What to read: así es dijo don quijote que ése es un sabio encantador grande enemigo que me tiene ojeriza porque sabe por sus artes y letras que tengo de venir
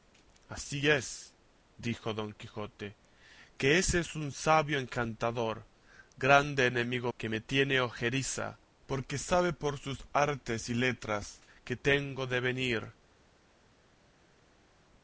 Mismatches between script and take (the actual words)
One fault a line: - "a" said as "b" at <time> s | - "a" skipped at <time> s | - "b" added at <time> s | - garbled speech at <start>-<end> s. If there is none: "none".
none